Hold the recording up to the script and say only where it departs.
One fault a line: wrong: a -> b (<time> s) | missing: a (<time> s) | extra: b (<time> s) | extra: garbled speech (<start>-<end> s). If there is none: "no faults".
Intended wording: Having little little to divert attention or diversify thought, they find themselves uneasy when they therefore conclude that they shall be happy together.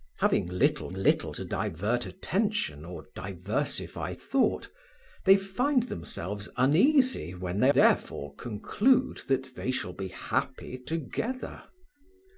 no faults